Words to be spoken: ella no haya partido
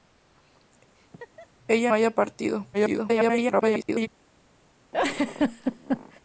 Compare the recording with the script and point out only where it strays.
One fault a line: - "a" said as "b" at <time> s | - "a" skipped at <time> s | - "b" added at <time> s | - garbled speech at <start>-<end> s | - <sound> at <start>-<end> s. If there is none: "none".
- laugh at 1.0-1.5 s
- "no" skipped at 1.9 s
- garbled speech at 2.7-4.1 s
- laugh at 4.9-6.2 s